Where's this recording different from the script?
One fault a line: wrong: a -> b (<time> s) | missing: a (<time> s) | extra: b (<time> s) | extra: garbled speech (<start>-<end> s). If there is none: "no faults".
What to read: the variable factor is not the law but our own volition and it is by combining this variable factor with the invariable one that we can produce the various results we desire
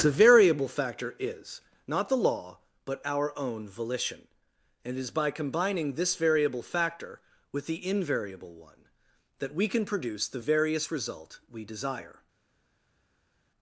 wrong: results -> result (10.9 s)